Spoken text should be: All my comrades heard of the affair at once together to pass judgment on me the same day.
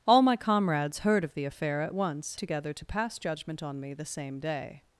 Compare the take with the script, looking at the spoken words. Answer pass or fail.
pass